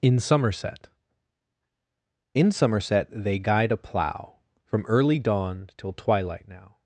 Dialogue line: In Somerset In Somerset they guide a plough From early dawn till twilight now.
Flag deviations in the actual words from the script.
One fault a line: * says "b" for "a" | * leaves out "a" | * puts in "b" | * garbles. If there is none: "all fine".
all fine